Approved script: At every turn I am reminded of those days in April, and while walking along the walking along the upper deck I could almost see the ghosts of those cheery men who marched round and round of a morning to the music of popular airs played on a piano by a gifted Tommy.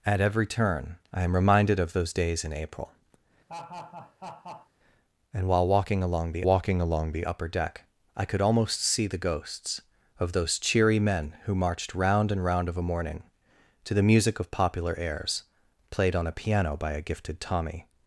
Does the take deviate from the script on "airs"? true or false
false